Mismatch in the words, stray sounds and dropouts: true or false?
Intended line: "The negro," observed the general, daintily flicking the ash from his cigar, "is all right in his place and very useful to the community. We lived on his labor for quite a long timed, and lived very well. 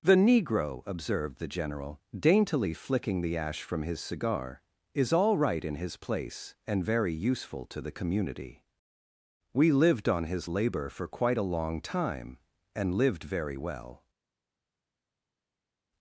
true